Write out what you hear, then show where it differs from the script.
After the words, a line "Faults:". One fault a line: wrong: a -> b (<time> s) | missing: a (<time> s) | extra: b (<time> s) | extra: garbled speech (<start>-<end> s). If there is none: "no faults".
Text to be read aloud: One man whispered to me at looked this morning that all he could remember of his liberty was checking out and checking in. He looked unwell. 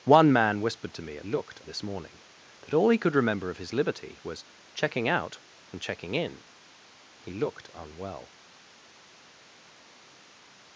One man whispered to me at looked this morning that all he could remember of his liberty was checking out and checking in. He looked unwell.
Faults:
no faults